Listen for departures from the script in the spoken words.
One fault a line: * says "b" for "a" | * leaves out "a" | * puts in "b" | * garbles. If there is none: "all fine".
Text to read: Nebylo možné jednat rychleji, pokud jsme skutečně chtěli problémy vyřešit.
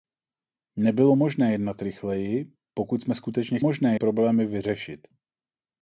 * says "možné" for "chtěli"